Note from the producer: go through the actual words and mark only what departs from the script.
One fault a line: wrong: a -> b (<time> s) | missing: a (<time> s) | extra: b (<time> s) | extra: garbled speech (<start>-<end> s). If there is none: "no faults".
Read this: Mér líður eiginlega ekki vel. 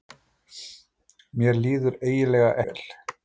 missing: ekki (2.5 s)